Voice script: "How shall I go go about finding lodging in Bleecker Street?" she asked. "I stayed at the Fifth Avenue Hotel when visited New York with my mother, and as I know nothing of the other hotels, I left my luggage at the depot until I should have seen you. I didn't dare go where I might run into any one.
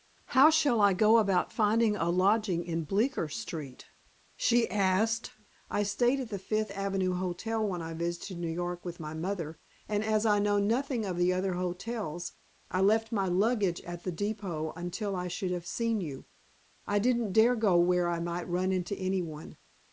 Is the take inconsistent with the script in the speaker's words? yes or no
yes